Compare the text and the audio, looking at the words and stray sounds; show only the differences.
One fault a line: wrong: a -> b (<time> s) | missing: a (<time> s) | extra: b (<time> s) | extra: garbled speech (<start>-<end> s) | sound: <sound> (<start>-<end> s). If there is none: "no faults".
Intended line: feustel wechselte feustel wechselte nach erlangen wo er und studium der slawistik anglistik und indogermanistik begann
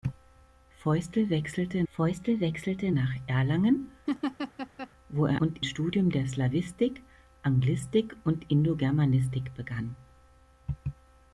sound: laugh (4.1-4.9 s)